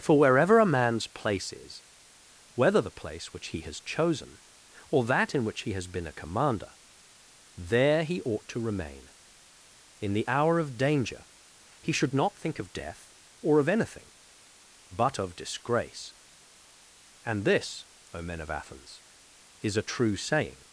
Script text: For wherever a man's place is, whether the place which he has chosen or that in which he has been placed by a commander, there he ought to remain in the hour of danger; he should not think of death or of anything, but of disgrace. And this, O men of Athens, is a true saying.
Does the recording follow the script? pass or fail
fail